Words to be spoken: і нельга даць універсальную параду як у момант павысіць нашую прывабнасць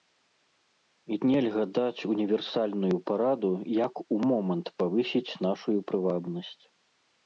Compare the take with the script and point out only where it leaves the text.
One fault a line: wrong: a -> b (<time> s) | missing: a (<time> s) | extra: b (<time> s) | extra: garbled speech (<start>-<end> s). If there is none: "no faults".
no faults